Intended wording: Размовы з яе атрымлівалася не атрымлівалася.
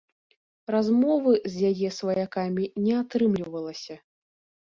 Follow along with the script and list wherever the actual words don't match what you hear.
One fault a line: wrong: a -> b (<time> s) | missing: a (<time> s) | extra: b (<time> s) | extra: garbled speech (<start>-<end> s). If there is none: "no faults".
wrong: атрымлівалася -> сваякамі (2.0 s)